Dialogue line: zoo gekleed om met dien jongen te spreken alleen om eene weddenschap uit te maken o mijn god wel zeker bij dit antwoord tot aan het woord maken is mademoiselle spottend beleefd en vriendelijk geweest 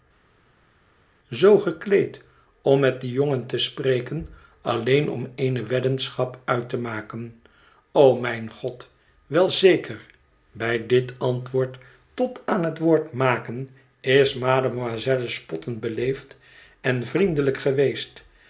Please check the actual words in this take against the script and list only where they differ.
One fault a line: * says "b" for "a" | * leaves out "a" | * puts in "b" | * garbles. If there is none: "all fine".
all fine